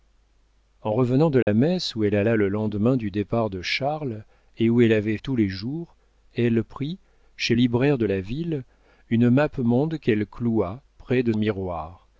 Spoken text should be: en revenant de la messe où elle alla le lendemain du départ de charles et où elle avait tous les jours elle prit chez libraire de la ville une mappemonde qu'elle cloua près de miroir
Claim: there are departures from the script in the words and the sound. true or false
true